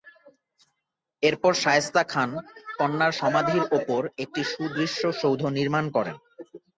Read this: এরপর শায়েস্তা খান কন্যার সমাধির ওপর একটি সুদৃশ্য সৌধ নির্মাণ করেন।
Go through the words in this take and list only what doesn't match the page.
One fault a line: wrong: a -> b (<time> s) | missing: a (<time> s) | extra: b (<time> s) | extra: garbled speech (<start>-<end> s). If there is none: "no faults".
no faults